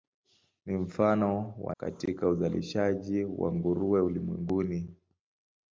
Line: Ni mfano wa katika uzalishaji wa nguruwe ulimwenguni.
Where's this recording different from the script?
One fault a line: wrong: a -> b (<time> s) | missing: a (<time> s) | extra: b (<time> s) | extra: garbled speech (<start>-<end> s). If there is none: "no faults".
no faults